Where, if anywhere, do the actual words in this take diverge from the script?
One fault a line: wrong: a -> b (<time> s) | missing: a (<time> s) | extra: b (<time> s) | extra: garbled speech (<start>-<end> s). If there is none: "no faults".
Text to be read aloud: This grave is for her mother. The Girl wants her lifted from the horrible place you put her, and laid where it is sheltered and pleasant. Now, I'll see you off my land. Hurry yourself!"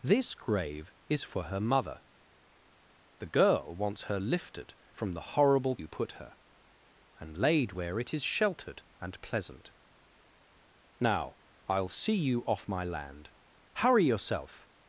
missing: place (5.8 s)